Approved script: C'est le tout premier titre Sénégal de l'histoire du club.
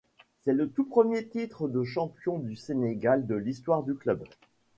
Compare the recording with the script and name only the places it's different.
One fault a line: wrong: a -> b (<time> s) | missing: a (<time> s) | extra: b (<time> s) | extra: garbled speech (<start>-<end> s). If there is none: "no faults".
extra: de champion du (1.7 s)